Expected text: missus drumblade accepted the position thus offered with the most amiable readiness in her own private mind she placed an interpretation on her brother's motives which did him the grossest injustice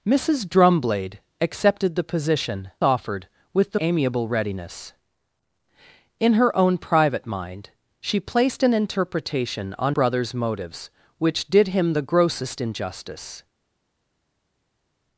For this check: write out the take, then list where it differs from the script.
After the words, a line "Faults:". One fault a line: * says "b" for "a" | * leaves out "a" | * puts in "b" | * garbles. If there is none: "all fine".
missus drumblade accepted the position offered with the amiable readiness in her own private mind she placed an interpretation on brother's motives which did him the grossest injustice
Faults:
* leaves out "thus"
* leaves out "most"
* leaves out "her"